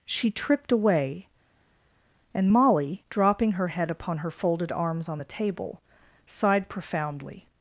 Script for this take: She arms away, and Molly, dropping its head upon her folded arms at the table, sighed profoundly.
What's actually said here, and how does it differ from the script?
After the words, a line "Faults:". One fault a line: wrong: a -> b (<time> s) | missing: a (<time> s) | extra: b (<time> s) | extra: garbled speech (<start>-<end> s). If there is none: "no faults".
She tripped away, and Molly, dropping her head upon her folded arms on the table, sighed profoundly.
Faults:
wrong: arms -> tripped (0.3 s)
wrong: its -> her (3.5 s)
wrong: at -> on (5.1 s)